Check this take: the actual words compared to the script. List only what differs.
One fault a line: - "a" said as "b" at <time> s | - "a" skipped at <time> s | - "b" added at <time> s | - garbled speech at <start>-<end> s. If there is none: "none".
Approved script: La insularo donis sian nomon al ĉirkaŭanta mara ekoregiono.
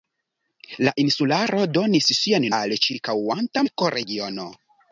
- "nomon" skipped at 2.5 s
- "mara" skipped at 3.7 s